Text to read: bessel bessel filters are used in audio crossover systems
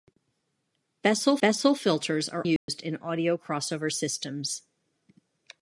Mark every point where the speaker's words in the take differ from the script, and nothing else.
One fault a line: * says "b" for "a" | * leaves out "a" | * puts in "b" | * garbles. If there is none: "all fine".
all fine